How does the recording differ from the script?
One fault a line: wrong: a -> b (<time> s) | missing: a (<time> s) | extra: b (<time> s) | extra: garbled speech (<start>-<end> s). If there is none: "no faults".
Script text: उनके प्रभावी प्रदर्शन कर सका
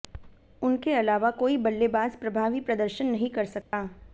extra: अलावा कोई बल्लेबाज (0.9 s)
extra: नहीं (3.1 s)